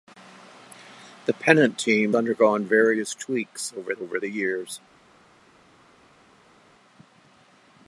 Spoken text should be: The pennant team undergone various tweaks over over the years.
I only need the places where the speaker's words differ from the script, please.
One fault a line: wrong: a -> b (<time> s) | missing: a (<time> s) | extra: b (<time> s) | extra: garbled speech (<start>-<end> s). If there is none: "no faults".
no faults